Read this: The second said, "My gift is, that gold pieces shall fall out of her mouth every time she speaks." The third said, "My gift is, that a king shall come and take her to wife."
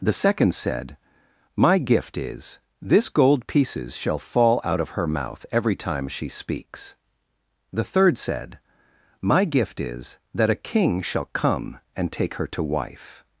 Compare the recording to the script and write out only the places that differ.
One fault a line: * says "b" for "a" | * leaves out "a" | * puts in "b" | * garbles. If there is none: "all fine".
* says "this" for "that"